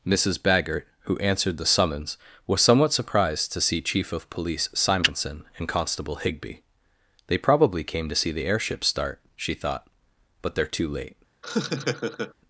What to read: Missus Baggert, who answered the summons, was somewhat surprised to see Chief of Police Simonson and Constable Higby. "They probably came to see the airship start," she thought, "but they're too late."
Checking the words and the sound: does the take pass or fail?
fail